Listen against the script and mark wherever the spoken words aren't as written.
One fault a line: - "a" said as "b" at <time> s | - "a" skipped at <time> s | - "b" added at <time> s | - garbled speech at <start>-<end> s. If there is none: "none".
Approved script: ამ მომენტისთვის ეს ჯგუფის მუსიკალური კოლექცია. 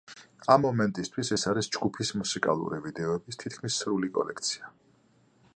- "არის" added at 1.5 s
- "ვიდეოების თითქმის სრული" added at 2.8 s